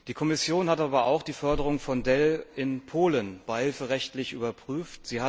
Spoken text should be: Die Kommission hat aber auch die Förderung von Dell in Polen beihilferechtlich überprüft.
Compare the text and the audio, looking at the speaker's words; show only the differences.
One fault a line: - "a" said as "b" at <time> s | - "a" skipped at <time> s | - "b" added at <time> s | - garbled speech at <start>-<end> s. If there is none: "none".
none